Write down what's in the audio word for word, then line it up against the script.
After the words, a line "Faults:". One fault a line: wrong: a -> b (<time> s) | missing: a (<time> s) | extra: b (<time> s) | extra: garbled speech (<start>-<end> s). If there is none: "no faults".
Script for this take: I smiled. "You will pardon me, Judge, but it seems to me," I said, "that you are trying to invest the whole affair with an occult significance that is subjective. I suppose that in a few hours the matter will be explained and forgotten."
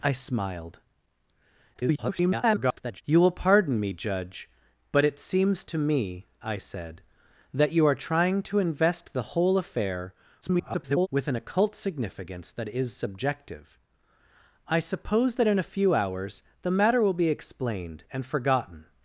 I smiled. [garbled] "You will pardon me, Judge, but it seems to me," I said, "that you are trying to invest the whole affair [garbled] with an occult significance that is subjective. I suppose that in a few hours the matter will be explained and forgotten."
Faults:
extra: garbled speech (1.7-3.0 s)
extra: garbled speech (10.4-11.1 s)